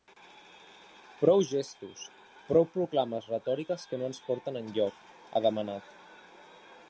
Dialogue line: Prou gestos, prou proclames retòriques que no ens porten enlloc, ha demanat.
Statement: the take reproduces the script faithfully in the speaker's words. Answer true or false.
true